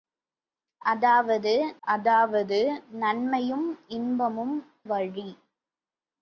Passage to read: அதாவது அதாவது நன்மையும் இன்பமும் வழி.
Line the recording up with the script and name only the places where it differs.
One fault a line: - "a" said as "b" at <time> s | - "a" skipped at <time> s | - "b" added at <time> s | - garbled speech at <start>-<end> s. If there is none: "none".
none